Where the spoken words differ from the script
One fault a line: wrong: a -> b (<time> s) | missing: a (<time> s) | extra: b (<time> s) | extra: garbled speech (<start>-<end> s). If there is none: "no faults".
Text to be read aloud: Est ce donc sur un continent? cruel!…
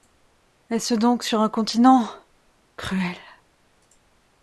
no faults